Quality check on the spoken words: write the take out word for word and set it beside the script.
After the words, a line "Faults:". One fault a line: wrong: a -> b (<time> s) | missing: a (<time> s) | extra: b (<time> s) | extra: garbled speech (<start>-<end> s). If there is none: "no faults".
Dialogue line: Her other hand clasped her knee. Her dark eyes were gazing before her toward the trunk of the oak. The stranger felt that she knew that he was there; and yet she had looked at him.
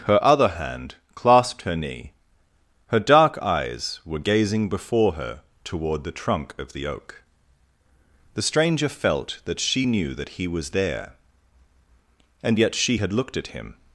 Her other hand clasped her knee. Her dark eyes were gazing before her toward the trunk of the oak. The stranger felt that she knew that he was there; and yet she had looked at him.
Faults:
no faults